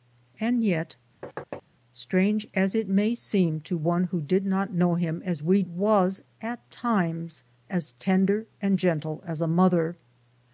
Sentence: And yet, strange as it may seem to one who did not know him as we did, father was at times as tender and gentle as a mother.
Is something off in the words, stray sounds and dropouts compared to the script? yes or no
yes